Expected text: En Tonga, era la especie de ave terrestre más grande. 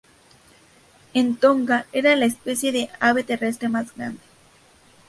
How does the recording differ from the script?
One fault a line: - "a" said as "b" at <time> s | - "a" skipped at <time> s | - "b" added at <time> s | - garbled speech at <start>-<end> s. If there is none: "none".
none